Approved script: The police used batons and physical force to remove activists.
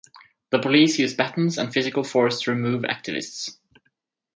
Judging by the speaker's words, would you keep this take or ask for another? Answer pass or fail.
pass